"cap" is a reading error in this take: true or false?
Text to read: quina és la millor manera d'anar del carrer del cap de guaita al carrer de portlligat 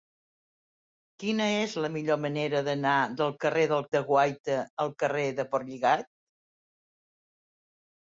true